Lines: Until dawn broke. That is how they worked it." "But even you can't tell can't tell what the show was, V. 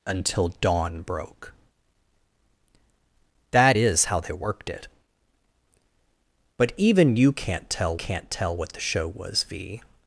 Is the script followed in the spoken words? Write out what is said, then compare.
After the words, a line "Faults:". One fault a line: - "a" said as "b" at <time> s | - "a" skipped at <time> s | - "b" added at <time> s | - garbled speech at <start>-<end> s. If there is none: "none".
Until dawn broke. That is how they worked it." "But even you can't tell can't tell what the show was, V.
Faults:
none